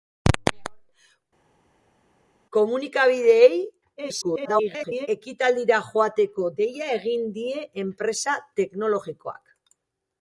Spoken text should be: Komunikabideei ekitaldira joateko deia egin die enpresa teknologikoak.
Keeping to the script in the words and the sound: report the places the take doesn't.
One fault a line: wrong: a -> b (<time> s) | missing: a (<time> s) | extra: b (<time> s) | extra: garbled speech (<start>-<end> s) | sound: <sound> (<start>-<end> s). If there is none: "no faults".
extra: garbled speech (4.0-5.1 s)